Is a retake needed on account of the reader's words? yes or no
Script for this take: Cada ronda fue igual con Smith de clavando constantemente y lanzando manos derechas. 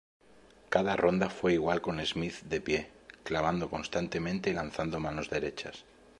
yes